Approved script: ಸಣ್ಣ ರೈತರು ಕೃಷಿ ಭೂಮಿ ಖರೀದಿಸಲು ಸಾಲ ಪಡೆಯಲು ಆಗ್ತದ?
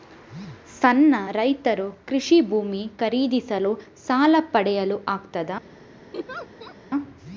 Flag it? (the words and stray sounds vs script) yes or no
yes